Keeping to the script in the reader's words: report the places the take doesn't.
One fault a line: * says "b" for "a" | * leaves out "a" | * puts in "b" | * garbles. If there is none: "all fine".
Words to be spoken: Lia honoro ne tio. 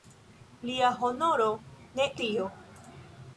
all fine